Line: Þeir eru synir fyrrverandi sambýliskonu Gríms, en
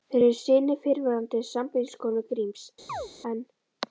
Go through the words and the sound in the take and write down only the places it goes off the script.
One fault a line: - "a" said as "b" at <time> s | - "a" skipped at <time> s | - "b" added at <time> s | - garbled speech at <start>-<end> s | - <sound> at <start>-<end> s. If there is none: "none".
- chirp at 2.9-3.1 s